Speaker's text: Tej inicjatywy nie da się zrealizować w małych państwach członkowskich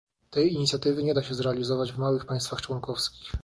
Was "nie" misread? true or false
false